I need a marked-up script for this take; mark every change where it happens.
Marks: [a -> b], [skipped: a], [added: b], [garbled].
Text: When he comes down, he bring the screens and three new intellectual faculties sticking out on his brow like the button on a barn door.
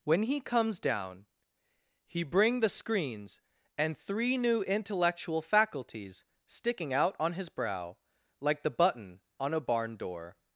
When he comes down, he bring the screens and three new intellectual faculties sticking out on his brow like the button on a barn door.